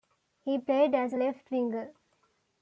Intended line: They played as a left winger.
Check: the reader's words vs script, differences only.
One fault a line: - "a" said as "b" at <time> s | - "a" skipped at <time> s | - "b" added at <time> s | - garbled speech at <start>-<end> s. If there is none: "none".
- "They" said as "He" at 0.4 s